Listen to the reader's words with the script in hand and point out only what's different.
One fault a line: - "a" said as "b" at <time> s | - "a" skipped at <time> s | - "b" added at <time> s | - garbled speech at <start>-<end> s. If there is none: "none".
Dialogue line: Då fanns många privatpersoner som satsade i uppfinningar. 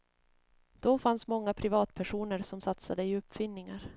none